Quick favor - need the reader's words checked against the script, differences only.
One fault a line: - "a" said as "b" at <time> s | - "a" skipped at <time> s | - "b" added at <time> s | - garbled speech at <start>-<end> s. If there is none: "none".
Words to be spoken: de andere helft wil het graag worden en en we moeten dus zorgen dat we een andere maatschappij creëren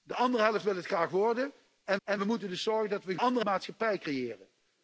none